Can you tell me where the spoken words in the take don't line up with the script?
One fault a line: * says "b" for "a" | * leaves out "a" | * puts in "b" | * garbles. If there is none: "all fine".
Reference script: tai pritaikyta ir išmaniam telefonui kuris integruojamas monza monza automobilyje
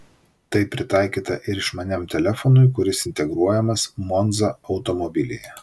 * leaves out "monza"